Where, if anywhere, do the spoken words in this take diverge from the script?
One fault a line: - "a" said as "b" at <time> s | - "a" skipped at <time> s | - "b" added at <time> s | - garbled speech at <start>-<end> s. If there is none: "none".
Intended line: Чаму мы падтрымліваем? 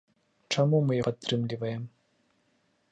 none